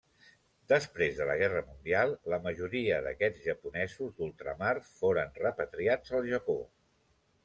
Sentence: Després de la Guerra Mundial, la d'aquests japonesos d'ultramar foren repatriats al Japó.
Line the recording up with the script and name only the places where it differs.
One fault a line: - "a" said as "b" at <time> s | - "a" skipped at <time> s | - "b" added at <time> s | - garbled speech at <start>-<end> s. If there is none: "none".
- "majoria" added at 2.5 s